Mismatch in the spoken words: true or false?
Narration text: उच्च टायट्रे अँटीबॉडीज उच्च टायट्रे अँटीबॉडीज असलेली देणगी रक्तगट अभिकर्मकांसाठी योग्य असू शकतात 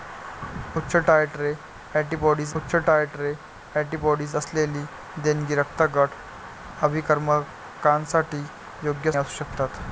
false